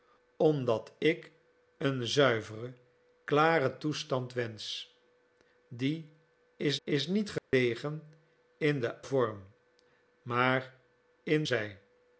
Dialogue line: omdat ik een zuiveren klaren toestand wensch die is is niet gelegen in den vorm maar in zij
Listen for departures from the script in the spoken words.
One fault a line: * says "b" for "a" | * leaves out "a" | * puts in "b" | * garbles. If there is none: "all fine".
all fine